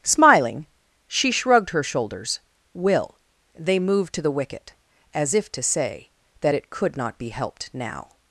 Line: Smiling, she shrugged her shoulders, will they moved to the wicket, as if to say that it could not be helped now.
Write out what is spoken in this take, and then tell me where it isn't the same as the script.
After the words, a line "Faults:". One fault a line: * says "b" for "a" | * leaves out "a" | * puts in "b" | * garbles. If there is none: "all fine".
Smiling, she shrugged her shoulders, will they moved to the wicket, as if to say that it could not be helped now.
Faults:
all fine